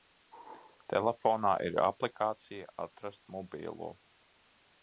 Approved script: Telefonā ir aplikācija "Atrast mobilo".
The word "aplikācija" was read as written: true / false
true